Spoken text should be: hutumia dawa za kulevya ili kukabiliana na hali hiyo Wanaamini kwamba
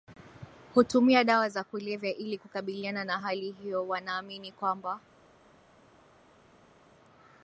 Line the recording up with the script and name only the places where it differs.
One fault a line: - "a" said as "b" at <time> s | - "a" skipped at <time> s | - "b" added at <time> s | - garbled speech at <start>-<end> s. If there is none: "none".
none